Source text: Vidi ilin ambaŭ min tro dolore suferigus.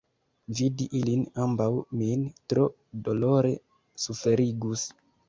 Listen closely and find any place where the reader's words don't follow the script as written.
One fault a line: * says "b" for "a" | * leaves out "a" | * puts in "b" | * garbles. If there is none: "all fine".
all fine